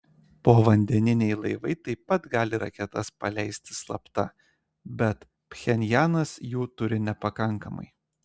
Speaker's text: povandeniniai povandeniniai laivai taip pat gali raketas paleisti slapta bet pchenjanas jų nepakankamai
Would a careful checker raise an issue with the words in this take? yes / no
yes